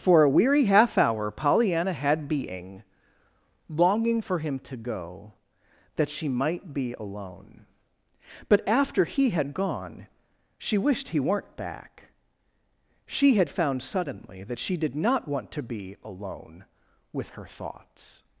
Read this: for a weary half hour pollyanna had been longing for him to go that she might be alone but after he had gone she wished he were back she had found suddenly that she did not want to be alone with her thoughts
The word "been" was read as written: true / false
false